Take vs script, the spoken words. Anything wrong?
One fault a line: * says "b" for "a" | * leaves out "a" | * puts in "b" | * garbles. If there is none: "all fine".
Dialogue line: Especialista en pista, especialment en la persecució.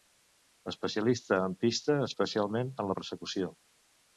all fine